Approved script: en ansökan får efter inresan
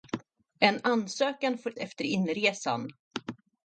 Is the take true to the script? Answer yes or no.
yes